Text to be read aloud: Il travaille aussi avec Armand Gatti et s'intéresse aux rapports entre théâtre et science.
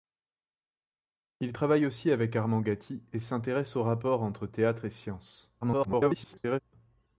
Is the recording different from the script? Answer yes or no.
yes